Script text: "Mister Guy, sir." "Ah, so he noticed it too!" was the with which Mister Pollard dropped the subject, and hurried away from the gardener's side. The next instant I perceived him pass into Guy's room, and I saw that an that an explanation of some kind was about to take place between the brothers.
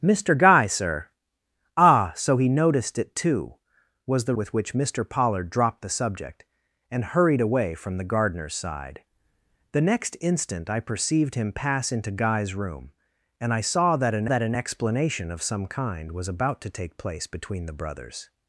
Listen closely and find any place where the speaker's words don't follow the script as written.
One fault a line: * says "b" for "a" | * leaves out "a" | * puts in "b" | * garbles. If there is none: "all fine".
all fine